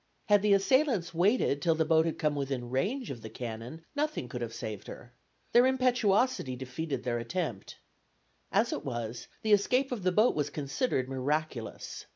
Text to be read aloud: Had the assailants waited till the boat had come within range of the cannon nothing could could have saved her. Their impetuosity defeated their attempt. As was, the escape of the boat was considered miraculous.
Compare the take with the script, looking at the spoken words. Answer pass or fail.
fail